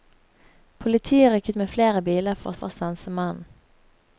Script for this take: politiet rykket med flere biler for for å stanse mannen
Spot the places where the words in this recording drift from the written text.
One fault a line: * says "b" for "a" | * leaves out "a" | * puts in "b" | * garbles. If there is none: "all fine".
all fine